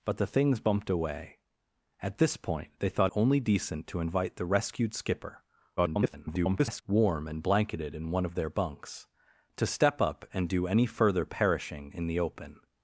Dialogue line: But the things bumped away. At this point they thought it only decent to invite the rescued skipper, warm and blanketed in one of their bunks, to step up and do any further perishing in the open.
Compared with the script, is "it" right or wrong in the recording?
wrong